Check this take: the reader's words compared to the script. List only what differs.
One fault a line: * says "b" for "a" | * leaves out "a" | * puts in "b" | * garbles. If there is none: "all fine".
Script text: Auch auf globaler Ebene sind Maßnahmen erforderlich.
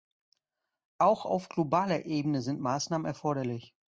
all fine